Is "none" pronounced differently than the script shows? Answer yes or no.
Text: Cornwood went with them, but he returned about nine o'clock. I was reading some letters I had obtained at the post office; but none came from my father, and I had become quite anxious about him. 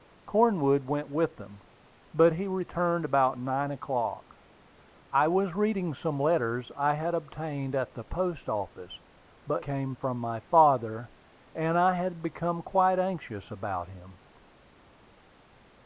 yes